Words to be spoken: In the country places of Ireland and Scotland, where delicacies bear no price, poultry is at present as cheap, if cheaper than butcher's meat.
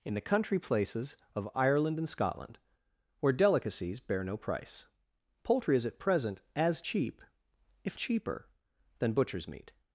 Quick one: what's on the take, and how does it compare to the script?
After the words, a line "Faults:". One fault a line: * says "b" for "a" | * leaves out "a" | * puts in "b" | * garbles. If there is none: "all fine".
In the country places of Ireland and Scotland, where delicacies bear no price, poultry is at present as cheap, if cheaper than butcher's meat.
Faults:
all fine